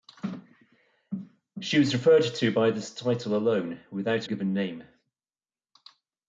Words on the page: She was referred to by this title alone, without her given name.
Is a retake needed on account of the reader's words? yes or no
yes